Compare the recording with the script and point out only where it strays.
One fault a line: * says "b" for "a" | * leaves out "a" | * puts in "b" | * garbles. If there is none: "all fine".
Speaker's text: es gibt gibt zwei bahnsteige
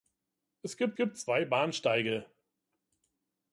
all fine